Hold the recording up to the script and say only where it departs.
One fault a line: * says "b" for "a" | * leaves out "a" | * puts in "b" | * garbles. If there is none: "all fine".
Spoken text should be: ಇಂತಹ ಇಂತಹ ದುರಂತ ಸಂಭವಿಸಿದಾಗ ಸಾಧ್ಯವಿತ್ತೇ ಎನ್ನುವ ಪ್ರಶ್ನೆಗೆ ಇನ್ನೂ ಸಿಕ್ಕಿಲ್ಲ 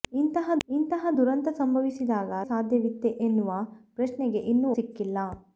all fine